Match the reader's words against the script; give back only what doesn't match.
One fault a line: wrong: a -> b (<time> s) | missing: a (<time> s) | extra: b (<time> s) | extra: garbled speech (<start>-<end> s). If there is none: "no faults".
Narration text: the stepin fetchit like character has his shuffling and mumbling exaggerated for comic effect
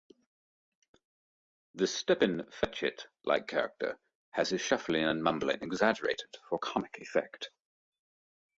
no faults